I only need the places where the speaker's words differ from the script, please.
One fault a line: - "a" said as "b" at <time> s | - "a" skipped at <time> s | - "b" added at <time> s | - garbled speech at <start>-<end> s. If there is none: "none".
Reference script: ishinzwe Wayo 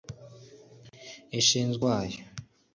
none